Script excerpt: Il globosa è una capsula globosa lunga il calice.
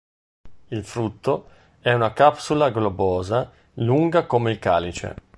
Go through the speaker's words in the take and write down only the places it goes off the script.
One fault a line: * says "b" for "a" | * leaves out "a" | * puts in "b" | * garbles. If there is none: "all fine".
* says "frutto" for "globosa"
* puts in "come"